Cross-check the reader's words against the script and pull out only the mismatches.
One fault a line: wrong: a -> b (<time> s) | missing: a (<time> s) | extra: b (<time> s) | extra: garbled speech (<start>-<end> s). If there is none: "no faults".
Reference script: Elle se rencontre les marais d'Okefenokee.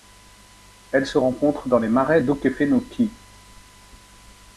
extra: dans (1.7 s)